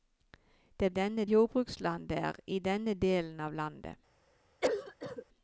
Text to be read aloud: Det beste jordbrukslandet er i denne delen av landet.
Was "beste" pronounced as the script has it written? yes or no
no